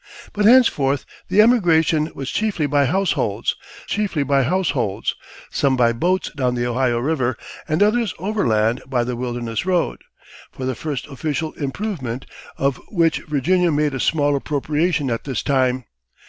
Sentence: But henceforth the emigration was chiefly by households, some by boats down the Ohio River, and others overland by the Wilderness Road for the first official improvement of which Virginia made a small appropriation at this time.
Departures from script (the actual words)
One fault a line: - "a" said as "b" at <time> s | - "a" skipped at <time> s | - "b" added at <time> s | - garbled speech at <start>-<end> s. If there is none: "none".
- "chiefly by households" added at 3.9 s